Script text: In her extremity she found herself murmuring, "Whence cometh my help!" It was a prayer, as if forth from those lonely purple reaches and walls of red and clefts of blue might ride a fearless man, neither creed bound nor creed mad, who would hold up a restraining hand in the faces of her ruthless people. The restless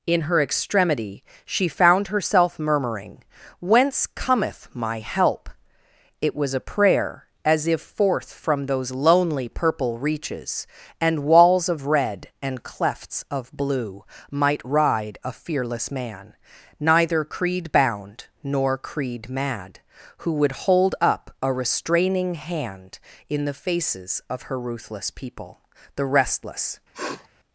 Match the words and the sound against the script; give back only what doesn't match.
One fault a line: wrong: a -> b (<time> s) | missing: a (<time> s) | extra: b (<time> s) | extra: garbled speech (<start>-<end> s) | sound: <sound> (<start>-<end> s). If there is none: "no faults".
sound: sniff (26.9-27.3 s)